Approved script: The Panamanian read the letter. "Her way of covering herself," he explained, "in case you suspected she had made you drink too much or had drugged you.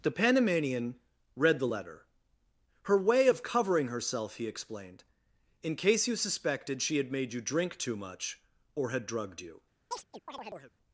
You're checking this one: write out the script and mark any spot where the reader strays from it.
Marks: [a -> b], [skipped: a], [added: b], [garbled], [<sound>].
The Panamanian read the letter. "Her way of covering herself," he explained, "in case you suspected she had made you drink too much or had drugged you. [chirp]